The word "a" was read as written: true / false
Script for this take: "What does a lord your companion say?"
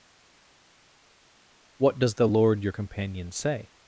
false